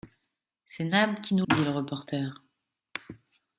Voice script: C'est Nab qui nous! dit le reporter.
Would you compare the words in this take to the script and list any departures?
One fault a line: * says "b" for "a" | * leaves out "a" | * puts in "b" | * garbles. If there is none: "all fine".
all fine